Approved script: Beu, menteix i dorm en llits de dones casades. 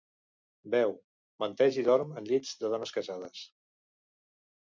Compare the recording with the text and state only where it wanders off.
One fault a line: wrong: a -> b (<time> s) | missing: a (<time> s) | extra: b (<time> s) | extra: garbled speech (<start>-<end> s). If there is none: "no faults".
no faults